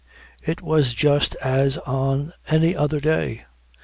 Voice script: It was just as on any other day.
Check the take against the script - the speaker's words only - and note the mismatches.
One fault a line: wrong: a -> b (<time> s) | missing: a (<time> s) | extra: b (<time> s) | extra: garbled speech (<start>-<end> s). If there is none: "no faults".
no faults